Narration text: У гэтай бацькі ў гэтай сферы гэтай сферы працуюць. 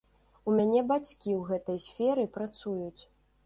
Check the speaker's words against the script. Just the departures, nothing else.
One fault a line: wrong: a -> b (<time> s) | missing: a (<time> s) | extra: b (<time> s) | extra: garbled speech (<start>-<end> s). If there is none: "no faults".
wrong: гэтай -> мяне (0.6 s)
missing: гэтай сферы (2.3 s)